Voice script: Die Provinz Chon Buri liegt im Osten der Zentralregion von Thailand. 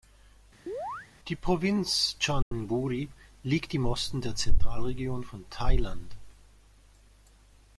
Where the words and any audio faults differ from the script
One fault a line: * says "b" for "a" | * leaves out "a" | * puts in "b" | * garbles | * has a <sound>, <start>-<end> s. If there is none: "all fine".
* has a chirp, 0.7-1.1 s
* has a dropout, 2.4-2.5 s